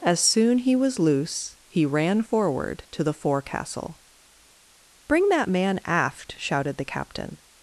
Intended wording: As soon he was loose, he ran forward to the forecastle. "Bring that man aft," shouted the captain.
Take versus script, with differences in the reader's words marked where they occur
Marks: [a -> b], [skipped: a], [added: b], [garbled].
As soon he was loose, he ran forward to the forecastle. "Bring that man aft," shouted the captain.